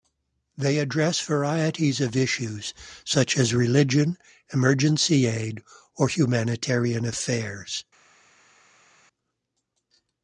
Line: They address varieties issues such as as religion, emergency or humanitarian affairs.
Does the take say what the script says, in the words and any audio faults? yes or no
no